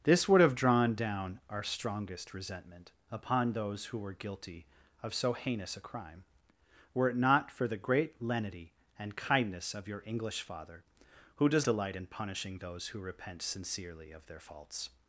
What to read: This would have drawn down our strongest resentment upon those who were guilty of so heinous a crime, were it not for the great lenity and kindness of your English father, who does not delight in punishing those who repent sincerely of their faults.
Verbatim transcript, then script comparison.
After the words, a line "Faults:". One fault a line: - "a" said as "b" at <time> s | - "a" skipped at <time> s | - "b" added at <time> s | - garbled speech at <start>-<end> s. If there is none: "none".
This would have drawn down our strongest resentment upon those who were guilty of so heinous a crime, were it not for the great lenity and kindness of your English father, who does delight in punishing those who repent sincerely of their faults.
Faults:
- "not" skipped at 11.7 s